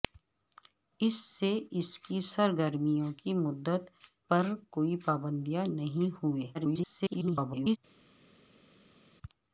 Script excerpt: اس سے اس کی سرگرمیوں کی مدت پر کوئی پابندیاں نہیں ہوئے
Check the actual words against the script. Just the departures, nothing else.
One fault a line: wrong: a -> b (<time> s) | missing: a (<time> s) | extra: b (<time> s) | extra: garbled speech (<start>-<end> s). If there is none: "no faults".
extra: garbled speech (6.5-7.8 s)